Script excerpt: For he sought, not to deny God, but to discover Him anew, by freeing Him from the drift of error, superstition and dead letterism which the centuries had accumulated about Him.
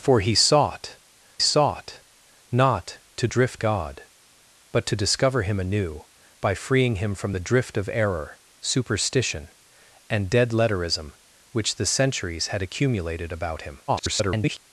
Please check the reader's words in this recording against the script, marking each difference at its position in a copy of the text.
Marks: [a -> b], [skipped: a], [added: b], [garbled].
For he sought, [added: sought] not to [deny -> drift] God, but to discover Him anew, by freeing Him from the drift of error, superstition and dead letterism which the centuries had accumulated about Him. [garbled]